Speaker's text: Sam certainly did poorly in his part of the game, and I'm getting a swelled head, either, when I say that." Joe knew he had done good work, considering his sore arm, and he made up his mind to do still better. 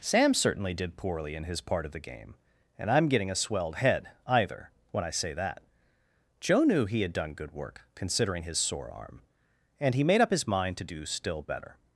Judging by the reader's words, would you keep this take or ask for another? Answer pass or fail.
pass